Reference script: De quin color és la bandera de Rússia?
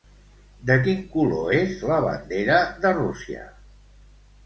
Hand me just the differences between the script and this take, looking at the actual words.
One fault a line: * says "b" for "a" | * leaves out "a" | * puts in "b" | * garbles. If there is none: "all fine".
all fine